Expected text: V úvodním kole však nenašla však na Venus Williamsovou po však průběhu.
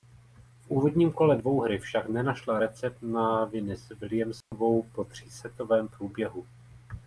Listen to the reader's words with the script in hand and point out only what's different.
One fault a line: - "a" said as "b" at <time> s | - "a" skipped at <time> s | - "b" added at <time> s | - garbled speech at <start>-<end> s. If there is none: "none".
- "dvouhry" added at 1.4 s
- "však" said as "recept" at 2.6 s
- "však" said as "třísetovém" at 5.0 s